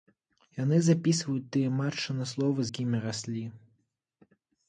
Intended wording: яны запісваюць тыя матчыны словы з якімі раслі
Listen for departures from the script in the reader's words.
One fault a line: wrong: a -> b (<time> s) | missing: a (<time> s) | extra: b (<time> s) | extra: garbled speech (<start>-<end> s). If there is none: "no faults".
missing: з (2.6 s)